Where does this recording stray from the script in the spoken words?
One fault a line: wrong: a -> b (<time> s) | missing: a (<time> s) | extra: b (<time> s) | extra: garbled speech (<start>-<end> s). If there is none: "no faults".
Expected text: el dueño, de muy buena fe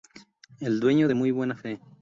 no faults